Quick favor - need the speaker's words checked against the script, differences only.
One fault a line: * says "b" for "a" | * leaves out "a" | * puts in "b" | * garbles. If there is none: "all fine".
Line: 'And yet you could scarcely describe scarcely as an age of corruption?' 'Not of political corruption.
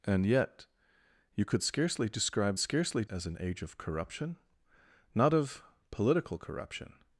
all fine